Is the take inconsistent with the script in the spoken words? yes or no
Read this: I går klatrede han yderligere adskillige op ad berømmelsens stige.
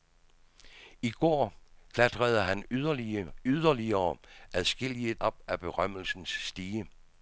no